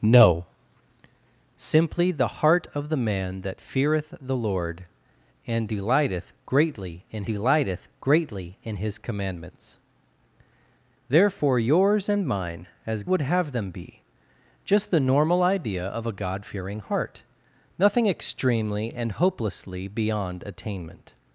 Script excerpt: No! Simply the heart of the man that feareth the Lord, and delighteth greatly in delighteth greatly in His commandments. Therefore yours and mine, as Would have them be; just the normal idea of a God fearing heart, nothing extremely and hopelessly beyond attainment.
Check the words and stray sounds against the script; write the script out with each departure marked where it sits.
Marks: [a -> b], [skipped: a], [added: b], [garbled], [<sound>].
No! Simply the heart of the man that feareth the Lord, and delighteth greatly in delighteth greatly in His commandments. Therefore yours and mine, as Would have them be; just the normal idea of a God fearing heart, nothing extremely and hopelessly beyond attainment.